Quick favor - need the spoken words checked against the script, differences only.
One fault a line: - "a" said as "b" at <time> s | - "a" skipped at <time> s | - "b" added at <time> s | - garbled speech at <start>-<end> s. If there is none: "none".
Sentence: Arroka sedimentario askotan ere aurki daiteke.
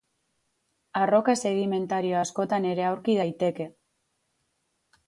none